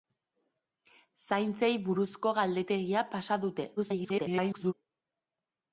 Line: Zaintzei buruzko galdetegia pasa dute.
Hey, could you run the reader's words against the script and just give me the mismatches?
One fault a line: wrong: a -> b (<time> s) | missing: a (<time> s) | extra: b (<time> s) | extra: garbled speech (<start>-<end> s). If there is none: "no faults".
extra: garbled speech (3.8-4.7 s)